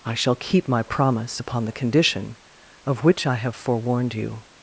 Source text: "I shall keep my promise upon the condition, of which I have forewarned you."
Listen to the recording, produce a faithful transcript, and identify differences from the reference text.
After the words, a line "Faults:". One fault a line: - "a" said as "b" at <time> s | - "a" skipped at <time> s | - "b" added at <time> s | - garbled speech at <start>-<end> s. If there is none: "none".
"I shall keep my promise upon the condition, of which I have forewarned you."
Faults:
none